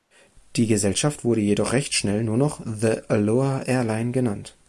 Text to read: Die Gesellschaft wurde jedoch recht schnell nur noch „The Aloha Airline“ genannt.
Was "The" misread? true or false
false